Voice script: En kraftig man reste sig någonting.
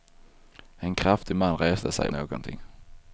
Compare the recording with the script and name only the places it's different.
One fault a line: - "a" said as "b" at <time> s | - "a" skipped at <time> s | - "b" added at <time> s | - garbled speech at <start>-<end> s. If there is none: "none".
none